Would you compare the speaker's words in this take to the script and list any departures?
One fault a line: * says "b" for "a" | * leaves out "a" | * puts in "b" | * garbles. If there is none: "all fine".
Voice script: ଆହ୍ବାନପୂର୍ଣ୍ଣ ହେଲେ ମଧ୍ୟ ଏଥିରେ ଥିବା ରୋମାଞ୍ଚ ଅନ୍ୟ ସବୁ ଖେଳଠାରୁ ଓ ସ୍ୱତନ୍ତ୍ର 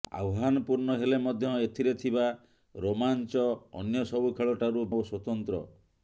all fine